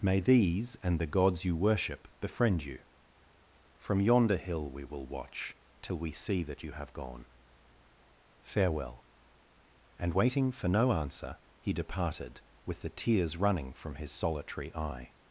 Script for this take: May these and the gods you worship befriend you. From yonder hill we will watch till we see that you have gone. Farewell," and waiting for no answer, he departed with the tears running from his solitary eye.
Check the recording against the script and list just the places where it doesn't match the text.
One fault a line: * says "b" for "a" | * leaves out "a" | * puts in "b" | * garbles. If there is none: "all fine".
all fine